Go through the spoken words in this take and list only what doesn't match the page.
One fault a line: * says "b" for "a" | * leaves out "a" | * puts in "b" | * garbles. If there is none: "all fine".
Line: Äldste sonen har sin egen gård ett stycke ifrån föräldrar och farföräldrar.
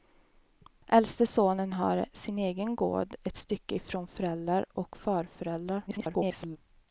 * garbles